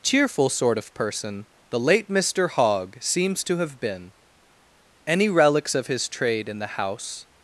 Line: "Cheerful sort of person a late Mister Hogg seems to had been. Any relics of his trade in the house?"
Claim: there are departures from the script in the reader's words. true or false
true